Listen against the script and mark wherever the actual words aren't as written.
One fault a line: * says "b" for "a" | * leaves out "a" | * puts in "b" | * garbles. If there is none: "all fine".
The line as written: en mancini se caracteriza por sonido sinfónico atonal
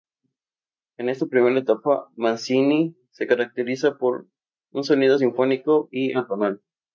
* puts in "esta primera etapa"
* puts in "un"
* puts in "y"